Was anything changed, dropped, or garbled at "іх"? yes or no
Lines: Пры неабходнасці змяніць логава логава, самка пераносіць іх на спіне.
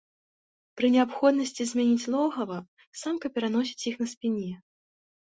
no